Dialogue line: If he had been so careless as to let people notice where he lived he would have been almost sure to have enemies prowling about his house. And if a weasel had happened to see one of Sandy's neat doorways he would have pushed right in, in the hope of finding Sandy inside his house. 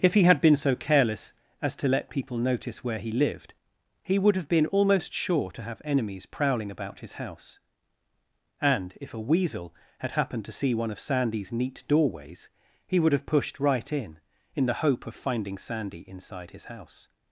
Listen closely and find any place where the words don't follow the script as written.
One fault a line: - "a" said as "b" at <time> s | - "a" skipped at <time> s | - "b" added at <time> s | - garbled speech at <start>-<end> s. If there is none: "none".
none